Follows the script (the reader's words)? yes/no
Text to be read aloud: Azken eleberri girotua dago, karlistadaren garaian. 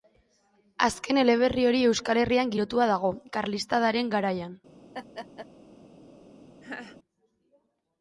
no